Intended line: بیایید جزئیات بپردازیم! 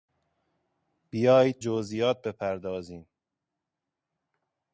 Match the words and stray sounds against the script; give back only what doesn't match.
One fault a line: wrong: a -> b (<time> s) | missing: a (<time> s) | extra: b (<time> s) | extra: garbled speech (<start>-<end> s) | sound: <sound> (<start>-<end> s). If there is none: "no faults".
no faults